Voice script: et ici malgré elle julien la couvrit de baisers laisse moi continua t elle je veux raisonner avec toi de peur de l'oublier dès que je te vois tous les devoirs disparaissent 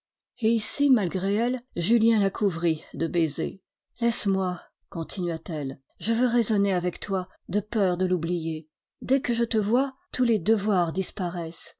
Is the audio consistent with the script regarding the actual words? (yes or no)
yes